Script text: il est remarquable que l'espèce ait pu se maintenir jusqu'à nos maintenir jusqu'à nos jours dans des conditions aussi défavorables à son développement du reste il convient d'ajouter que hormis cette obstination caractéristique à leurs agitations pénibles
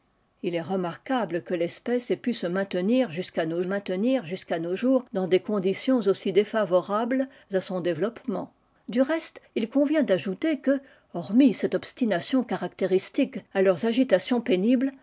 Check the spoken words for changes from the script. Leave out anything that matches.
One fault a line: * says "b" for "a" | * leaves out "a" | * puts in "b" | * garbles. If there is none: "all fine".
all fine